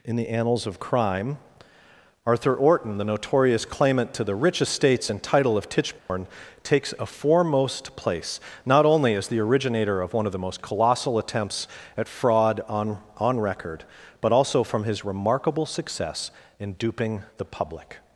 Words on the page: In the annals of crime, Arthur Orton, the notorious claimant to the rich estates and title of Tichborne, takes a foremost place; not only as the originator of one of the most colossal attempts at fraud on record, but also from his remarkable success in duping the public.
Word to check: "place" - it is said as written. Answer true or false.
true